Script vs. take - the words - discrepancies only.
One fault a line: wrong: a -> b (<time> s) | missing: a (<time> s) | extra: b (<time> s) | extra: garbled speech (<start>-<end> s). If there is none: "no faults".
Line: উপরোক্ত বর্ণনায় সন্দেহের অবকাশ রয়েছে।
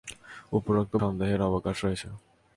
missing: বর্ণনায় (0.9 s)